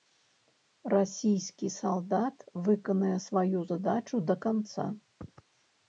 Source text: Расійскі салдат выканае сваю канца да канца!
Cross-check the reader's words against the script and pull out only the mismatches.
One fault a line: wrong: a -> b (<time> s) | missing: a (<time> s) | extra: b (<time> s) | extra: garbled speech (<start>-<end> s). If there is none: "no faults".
wrong: канца -> задачу (3.7 s)